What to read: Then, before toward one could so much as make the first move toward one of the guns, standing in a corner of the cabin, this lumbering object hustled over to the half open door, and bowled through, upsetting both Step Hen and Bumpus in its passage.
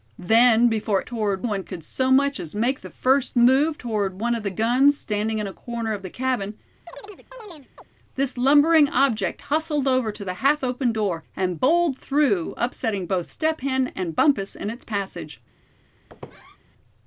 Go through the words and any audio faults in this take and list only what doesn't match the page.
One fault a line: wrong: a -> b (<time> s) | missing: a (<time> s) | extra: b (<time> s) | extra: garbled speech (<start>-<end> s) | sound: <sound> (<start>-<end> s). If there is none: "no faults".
sound: chirp (6.9-7.9 s)
sound: squeak (16.1-16.6 s)